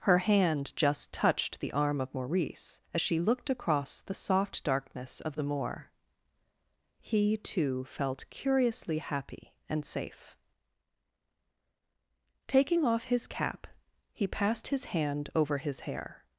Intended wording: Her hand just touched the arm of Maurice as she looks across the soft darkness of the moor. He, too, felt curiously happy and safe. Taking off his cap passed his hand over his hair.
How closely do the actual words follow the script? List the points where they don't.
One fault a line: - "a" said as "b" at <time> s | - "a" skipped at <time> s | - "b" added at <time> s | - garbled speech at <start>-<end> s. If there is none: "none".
- "looks" said as "looked" at 3.2 s
- "he" added at 14.1 s